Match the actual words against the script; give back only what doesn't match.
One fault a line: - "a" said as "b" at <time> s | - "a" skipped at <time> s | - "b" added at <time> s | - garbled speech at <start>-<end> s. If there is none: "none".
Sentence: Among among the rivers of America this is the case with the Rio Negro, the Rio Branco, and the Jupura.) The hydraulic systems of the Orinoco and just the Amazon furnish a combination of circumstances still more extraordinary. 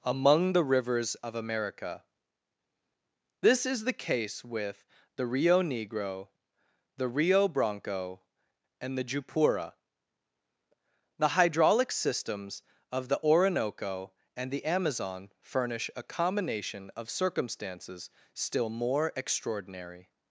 - "among" skipped at 0.5 s
- "just" skipped at 14.5 s